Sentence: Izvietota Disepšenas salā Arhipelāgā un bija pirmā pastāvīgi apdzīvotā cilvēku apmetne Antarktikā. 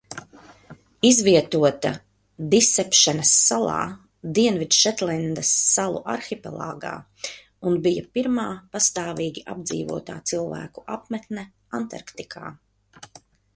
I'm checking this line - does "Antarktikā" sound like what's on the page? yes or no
yes